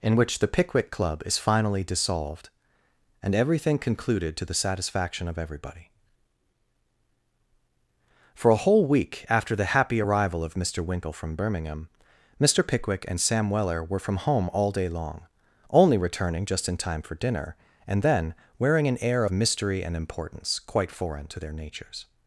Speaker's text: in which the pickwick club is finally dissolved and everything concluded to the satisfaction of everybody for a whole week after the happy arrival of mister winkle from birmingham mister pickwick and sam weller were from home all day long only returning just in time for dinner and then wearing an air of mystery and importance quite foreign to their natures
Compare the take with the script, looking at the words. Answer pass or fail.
fail